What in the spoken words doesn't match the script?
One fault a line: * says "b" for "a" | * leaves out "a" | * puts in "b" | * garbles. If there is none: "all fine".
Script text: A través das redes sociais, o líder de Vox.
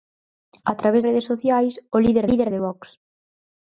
* leaves out "das"
* puts in "líder"